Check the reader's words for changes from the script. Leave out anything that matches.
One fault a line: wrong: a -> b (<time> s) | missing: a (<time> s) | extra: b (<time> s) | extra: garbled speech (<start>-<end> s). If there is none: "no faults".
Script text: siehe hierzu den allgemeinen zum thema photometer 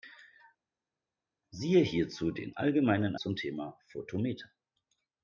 no faults